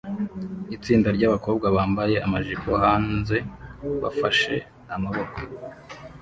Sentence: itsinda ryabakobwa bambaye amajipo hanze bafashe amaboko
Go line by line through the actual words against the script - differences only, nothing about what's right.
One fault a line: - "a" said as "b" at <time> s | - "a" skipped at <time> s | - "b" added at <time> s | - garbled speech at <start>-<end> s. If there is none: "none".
none